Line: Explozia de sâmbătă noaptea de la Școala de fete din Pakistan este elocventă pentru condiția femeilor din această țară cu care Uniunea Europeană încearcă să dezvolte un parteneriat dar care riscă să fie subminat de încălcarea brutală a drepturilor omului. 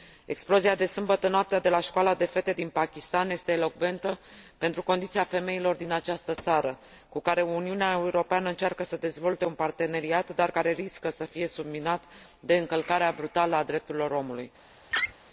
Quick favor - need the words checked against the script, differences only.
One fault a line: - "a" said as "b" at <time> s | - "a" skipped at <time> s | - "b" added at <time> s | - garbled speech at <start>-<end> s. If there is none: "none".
none